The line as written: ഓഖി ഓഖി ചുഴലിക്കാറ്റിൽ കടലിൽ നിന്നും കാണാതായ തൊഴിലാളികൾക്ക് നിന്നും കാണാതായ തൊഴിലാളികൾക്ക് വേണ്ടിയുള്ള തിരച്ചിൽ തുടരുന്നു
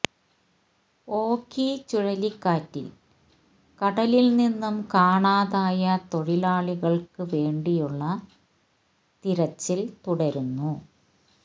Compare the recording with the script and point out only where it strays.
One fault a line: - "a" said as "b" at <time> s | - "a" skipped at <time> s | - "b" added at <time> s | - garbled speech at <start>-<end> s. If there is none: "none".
- "ഓഖി" skipped at 1.7 s
- "നിന്നും കാണാതായ തൊഴിലാളികൾക്ക്" skipped at 7.2 s